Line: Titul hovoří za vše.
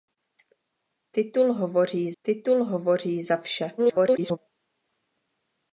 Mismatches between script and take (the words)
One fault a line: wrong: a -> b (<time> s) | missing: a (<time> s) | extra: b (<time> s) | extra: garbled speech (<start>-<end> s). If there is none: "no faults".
extra: titul hovoří (2.2 s)
extra: garbled speech (3.8-4.4 s)